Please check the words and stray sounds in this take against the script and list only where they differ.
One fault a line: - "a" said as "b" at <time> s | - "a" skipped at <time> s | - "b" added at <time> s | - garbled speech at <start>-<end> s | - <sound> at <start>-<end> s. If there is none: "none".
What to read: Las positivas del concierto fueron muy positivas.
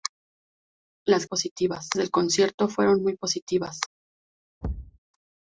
- thud at 4.6-5.0 s